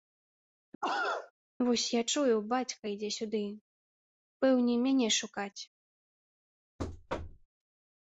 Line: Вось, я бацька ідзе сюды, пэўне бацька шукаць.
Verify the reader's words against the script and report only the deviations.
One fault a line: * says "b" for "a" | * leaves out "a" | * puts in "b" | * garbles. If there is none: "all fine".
* puts in "чую"
* says "мяне" for "бацька"